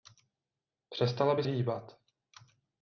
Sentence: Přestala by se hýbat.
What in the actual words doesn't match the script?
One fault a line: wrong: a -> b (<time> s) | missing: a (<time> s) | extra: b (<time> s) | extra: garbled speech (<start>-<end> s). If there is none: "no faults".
missing: se (1.4 s)